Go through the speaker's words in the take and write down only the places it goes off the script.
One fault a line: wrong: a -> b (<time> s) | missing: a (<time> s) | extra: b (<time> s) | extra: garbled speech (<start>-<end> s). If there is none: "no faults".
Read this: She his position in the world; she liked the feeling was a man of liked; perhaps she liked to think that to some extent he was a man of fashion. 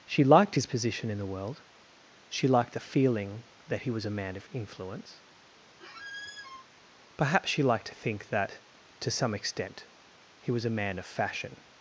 extra: liked (0.2 s)
extra: that he (3.7 s)
wrong: liked -> influence (4.5 s)